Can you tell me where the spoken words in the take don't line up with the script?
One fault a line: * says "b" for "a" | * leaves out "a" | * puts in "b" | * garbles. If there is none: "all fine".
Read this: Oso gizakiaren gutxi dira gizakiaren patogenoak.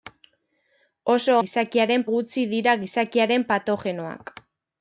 all fine